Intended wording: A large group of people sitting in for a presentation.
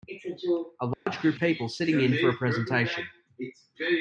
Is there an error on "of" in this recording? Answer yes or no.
yes